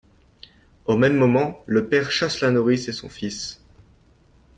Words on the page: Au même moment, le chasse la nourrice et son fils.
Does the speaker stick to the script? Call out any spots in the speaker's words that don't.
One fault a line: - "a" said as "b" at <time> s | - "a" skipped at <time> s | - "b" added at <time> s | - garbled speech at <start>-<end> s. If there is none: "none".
- "père" added at 1.9 s